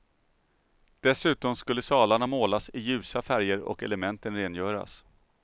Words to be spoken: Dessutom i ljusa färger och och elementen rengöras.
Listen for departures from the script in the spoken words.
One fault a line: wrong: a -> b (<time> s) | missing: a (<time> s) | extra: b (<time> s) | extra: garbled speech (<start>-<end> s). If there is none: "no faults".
extra: skulle salarna målas (1.6 s)
missing: och (3.8 s)